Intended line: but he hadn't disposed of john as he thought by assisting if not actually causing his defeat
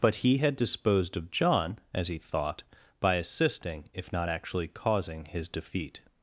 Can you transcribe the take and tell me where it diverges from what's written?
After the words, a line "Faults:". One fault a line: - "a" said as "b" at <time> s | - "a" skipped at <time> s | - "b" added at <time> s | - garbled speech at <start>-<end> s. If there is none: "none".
but he had disposed of john as he thought by assisting if not actually causing his defeat
Faults:
- "hadn't" said as "had" at 0.4 s